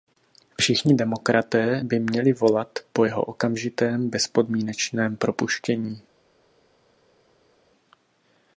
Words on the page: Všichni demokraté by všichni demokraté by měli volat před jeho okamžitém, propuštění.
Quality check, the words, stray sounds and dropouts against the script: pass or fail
fail